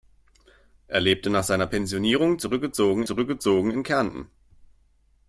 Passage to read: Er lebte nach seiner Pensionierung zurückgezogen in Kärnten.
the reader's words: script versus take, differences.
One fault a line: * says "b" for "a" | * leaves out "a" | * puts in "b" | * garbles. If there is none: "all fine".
* puts in "zurückgezogen"